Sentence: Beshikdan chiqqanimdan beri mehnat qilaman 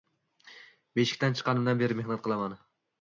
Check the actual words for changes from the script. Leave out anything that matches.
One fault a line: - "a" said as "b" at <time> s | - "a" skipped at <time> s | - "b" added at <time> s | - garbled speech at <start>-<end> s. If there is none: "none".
none